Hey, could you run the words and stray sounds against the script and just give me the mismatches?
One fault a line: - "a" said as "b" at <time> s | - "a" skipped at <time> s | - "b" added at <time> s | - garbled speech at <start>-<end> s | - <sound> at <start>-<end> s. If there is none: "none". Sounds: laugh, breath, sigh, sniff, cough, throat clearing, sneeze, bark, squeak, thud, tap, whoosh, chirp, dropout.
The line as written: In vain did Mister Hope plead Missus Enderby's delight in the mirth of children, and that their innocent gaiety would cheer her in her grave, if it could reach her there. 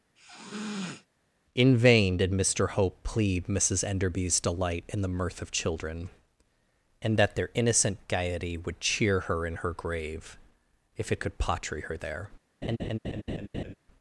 - sniff at 0.2-1.1 s
- "reach" said as "potry" at 11.4 s
- laugh at 12.6-13.7 s